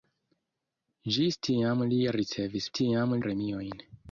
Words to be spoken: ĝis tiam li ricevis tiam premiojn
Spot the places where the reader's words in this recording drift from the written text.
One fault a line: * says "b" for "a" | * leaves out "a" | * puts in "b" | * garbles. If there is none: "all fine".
all fine